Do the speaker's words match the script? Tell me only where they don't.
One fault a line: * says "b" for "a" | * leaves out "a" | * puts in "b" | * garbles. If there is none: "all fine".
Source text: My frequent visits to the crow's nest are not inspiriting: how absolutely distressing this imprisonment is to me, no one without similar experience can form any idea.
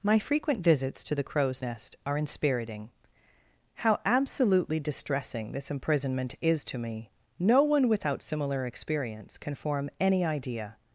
* leaves out "not"